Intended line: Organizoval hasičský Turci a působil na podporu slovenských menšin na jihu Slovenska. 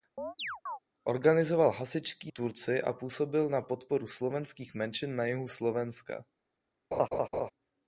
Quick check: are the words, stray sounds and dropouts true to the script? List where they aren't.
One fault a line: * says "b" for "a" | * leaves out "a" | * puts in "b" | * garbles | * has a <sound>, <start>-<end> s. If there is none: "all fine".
* has a chirp, 0.2-0.8 s
* has a laugh, 6.9-7.5 s